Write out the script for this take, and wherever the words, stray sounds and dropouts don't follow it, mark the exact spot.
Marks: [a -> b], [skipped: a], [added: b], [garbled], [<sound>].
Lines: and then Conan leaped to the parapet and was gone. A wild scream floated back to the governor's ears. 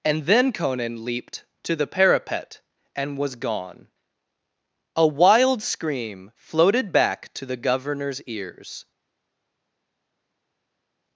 and then Conan leaped to the parapet and was gone. A wild scream floated back to the governor's ears.